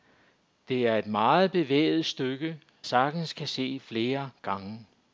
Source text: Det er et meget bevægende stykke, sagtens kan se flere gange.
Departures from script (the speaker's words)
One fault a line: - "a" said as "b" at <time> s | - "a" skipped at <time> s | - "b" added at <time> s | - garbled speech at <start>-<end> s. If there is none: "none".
none